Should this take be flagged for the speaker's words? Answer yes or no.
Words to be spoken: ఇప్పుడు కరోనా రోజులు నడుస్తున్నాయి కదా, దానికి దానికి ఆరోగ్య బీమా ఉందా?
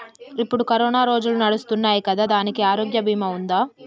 yes